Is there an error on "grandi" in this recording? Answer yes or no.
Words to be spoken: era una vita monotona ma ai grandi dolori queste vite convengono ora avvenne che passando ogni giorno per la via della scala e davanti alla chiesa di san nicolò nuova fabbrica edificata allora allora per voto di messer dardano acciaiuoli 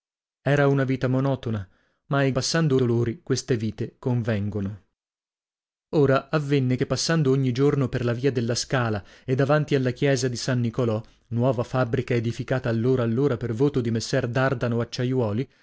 yes